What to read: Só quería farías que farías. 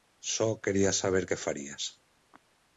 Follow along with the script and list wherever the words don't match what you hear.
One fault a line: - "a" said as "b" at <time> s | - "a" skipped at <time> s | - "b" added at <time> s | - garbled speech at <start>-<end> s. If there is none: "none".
- "farías" said as "saber" at 0.9 s